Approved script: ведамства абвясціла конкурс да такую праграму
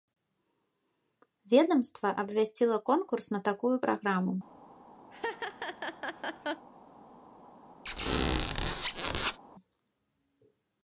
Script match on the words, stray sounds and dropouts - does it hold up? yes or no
no